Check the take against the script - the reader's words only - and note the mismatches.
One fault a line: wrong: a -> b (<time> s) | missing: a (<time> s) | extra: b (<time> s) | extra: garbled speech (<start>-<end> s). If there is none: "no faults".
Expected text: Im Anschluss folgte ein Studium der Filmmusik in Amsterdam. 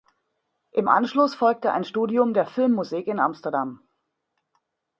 no faults